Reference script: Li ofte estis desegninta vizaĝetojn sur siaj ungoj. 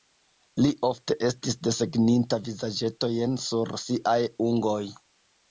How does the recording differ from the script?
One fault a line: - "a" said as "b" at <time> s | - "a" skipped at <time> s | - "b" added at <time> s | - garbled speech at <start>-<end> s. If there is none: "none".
none